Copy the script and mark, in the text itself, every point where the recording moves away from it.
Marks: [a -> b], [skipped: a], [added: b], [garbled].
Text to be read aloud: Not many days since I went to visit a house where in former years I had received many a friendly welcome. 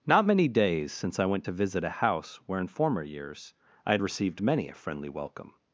Not many days since I went to visit a house where in former years I had received many a friendly welcome.